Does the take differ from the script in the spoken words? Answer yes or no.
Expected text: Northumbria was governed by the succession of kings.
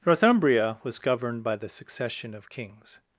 no